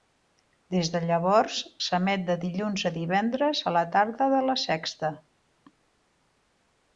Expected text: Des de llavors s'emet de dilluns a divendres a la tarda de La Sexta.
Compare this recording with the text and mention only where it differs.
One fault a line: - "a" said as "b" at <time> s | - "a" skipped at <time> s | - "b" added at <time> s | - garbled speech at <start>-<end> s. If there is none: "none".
none